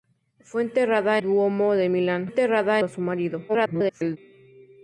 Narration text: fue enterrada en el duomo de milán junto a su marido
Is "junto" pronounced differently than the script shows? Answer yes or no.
yes